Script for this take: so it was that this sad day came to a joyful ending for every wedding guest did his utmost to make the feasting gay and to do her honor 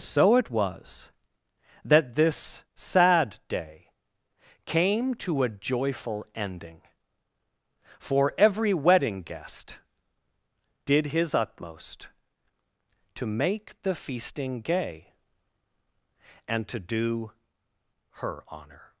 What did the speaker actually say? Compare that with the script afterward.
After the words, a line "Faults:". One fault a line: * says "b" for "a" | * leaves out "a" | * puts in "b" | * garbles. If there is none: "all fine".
so it was that this sad day came to a joyful ending for every wedding guest did his utmost to make the feasting gay and to do her honor
Faults:
all fine